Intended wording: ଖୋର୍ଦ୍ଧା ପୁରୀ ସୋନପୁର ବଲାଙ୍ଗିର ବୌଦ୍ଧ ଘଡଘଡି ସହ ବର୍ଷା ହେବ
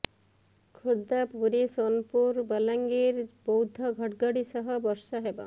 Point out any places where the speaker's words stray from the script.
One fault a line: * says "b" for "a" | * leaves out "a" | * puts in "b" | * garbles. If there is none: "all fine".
all fine